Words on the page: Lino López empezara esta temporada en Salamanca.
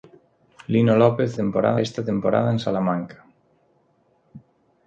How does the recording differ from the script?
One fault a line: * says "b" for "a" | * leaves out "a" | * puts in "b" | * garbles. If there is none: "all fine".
* says "temporada" for "empezara"